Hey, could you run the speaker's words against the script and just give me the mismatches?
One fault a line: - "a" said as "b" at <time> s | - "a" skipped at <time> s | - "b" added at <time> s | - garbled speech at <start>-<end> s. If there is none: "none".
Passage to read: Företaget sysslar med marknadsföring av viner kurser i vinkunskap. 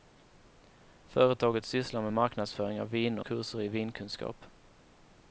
none